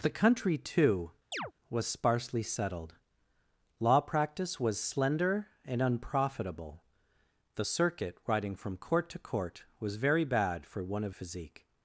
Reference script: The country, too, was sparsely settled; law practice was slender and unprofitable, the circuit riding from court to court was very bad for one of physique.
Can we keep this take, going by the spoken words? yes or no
yes